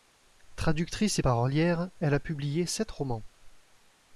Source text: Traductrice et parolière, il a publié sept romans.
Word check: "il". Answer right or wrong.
wrong